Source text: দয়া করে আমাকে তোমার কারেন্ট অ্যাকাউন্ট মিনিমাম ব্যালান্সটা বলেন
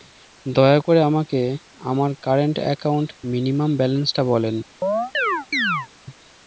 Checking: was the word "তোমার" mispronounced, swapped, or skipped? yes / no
yes